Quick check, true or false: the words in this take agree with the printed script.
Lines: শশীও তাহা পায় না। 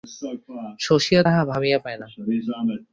false